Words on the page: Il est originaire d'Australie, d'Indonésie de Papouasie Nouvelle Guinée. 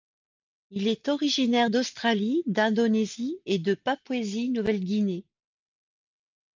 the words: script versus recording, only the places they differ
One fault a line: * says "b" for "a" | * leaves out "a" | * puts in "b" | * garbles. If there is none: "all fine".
* puts in "et"